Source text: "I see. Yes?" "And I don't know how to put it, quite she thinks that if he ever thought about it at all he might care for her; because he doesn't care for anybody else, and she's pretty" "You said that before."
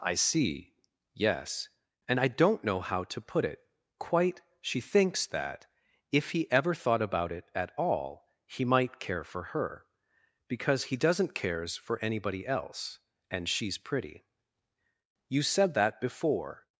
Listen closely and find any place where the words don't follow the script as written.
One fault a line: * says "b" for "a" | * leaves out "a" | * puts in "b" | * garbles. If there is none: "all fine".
* says "cares" for "care"